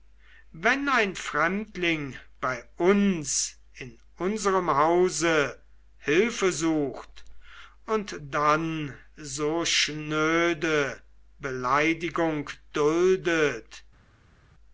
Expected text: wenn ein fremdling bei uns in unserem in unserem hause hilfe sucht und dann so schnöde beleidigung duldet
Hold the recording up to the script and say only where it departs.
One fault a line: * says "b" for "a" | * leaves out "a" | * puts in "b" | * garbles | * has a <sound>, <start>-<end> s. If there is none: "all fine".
* leaves out "in unserem"